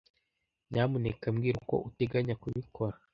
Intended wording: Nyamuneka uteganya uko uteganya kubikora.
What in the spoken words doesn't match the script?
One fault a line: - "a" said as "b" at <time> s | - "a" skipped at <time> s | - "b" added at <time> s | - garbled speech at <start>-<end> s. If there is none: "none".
- "uteganya" said as "mbwira" at 1.3 s